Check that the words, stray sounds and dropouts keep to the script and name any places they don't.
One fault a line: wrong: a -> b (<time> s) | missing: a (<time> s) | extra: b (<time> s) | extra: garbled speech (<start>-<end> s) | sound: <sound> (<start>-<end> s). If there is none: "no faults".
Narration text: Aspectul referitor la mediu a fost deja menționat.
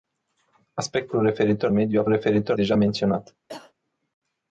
missing: la (1.7 s)
wrong: fost -> referitor (2.1 s)
sound: cough (3.5-3.7 s)